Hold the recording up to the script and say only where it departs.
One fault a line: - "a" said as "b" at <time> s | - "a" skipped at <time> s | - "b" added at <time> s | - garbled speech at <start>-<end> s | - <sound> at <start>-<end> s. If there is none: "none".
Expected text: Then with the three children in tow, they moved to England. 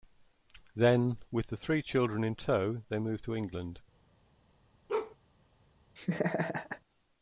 - bark at 4.9-5.2 s
- laugh at 6.0-6.8 s